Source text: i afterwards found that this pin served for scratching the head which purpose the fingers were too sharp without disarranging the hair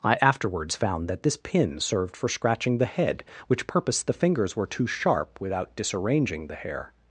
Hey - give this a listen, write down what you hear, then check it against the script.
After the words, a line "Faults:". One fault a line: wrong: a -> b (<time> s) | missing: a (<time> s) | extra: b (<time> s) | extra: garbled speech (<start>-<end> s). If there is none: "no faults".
i afterwards found that this pin served for scratching the head which purpose the fingers were too sharp without disarranging the hair
Faults:
no faults